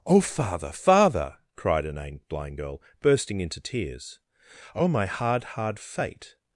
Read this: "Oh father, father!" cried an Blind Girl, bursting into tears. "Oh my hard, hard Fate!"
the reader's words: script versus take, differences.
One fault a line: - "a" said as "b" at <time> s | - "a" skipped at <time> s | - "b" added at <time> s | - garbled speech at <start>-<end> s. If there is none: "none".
none